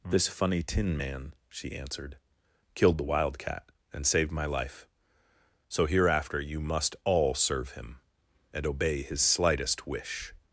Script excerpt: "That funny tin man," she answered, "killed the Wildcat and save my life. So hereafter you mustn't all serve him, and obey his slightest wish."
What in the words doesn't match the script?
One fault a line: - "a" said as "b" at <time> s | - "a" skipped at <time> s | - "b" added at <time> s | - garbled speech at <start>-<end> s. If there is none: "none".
- "That" said as "This" at 0.1 s
- "save" said as "saved" at 4.1 s
- "mustn't" said as "must" at 6.6 s